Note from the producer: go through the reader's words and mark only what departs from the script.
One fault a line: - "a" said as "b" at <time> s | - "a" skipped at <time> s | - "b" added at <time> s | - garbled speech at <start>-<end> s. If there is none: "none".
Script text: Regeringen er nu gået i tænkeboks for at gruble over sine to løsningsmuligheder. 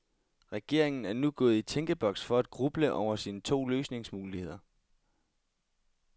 none